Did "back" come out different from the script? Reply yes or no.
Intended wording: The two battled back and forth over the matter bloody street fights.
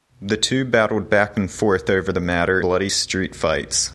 no